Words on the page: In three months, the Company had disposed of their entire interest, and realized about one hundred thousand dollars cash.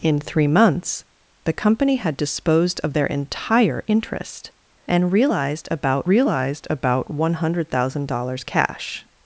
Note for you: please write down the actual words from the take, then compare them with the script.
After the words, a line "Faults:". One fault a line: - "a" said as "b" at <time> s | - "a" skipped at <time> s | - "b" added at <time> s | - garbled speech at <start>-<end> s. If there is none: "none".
In three months, the Company had disposed of their entire interest, and realized about realized about one hundred thousand dollars cash.
Faults:
- "realized about" added at 6.1 s